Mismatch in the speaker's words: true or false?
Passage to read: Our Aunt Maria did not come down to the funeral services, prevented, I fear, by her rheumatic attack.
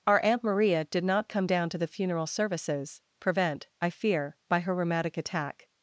true